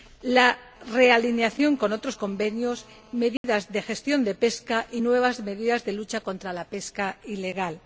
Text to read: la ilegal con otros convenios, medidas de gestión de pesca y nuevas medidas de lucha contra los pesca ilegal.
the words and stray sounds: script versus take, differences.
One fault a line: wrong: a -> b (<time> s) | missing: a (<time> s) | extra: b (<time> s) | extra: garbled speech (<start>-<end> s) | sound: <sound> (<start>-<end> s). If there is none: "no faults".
wrong: ilegal -> realineación (0.9 s)
sound: dropout (3.4-3.4 s)
wrong: los -> la (6.5 s)